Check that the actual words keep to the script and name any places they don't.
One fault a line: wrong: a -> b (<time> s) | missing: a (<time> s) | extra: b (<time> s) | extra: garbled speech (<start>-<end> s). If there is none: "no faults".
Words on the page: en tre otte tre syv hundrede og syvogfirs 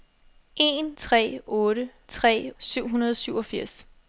no faults